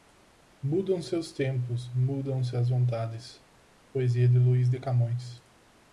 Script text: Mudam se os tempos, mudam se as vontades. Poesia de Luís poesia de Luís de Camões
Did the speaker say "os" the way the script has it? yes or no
yes